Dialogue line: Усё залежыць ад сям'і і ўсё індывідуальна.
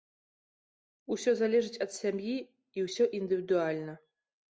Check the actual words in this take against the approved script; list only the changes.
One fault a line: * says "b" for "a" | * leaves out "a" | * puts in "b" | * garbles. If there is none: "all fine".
all fine